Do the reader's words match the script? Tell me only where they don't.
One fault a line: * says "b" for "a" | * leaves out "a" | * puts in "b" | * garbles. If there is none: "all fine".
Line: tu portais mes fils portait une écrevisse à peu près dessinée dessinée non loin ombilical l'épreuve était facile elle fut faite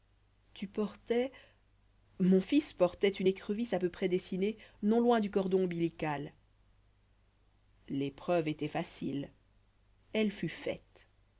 * says "mon" for "mes"
* leaves out "dessinée"
* puts in "du cordon"